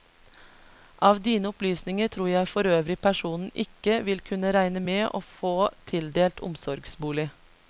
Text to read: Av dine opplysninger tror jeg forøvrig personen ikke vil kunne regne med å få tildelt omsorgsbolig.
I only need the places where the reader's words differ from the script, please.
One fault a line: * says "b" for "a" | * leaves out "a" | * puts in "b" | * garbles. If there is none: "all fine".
all fine